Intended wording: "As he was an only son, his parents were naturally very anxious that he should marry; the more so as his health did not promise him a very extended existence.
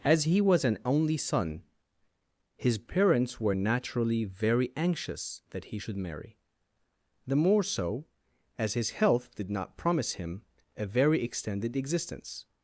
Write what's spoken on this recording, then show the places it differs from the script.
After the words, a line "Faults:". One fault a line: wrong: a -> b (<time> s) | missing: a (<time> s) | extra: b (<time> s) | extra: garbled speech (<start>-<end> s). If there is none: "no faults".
"As he was an only son, his parents were naturally very anxious that he should marry; the more so as his health did not promise him a very extended existence.
Faults:
no faults